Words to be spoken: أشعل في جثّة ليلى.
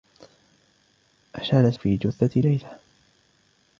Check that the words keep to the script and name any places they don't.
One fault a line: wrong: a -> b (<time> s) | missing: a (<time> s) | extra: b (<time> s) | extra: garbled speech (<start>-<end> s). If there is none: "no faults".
no faults